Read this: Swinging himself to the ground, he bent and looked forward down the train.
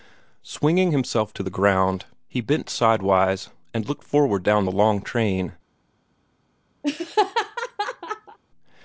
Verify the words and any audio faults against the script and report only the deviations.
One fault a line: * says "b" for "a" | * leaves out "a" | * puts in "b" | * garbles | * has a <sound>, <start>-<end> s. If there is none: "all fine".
* puts in "sidewise"
* puts in "long"
* has a laugh, 6.8-8.4 s